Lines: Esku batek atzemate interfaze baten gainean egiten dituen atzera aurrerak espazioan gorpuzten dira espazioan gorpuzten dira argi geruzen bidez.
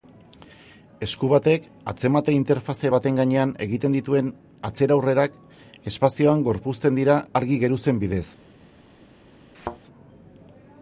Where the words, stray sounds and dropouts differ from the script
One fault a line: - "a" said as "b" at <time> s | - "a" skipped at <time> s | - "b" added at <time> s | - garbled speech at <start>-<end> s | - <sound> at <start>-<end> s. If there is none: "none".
- "espazioan gorpuzten dira" skipped at 7.2 s
- thud at 9.5-9.8 s